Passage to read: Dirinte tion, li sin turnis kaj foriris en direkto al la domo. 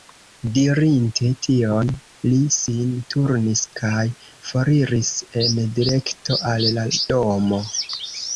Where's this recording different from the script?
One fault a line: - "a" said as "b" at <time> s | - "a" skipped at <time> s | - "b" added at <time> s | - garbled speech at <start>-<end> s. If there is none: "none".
none